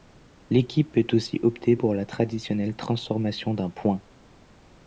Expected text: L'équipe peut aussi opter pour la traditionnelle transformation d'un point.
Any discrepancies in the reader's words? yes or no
no